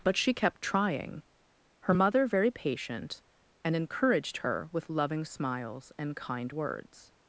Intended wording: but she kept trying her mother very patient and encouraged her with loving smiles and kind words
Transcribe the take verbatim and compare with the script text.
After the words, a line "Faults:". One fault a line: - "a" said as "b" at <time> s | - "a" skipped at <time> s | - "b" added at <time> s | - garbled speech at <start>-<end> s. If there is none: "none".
but she kept trying her mother very patient and encouraged her with loving smiles and kind words
Faults:
none